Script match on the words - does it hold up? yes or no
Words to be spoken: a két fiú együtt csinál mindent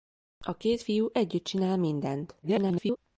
no